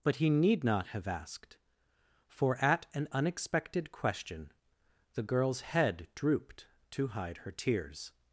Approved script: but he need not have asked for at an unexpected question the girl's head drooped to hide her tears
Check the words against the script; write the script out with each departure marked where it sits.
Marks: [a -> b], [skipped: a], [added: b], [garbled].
but he need not have asked for at an unexpected question the girl's head drooped to hide her tears